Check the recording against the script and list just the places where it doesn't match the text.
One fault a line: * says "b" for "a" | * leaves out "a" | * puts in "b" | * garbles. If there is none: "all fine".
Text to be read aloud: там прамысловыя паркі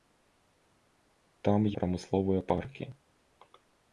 all fine